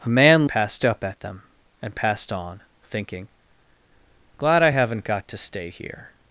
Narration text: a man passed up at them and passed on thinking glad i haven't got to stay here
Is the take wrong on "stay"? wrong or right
right